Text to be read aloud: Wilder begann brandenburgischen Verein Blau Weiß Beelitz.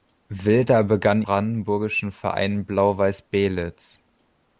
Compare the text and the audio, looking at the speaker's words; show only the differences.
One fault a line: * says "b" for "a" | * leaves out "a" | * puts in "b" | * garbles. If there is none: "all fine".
all fine